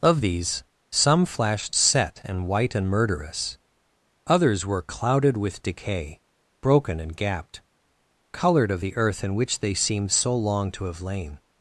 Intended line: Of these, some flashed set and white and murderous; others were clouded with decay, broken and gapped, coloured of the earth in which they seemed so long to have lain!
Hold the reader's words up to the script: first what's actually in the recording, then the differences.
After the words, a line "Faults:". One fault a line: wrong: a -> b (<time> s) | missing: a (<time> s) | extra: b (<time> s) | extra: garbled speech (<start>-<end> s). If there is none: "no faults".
Of these, some flashed set and white and murderous; others were clouded with decay, broken and gapped, coloured of the earth in which they seemed so long to have lain!
Faults:
no faults